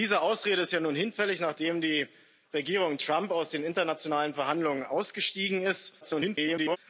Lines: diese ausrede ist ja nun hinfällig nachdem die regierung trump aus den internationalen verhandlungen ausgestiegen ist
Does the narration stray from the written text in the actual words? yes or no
yes